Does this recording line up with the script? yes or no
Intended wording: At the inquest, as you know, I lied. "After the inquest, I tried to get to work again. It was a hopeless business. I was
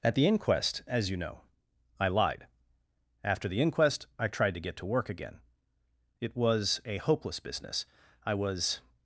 yes